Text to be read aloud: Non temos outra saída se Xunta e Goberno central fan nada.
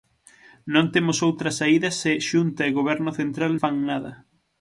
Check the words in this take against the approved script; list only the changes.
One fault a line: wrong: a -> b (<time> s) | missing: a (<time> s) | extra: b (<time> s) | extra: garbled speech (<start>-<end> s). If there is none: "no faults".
no faults